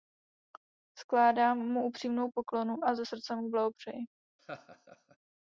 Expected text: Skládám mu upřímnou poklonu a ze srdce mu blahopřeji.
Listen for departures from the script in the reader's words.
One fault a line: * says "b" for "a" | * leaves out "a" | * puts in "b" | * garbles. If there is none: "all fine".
all fine